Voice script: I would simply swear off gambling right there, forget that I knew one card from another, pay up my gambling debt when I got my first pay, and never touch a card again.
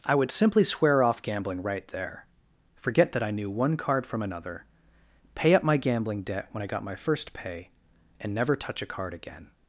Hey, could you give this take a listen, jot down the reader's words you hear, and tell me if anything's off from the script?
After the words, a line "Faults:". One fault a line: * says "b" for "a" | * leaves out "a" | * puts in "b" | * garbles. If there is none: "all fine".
I would simply swear off gambling right there, forget that I knew one card from another, pay up my gambling debt when I got my first pay, and never touch a card again.
Faults:
all fine